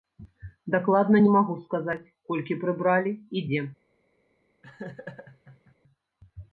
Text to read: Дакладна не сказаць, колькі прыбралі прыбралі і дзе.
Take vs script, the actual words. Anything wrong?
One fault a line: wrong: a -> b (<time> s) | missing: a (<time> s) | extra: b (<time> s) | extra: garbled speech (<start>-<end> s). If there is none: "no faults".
extra: магу (1.4 s)
missing: прыбралі (3.2 s)